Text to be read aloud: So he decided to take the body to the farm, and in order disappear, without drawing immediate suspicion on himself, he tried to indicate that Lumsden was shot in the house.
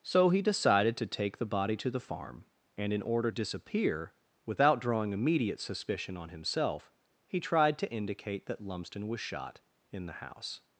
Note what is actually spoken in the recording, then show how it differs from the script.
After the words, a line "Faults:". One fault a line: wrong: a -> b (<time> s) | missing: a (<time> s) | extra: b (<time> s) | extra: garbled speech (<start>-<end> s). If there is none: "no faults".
So he decided to take the body to the farm, and in order disappear, without drawing immediate suspicion on himself, he tried to indicate that Lumsden was shot in the house.
Faults:
no faults